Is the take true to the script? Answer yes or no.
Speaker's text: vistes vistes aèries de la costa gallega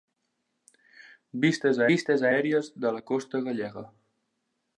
yes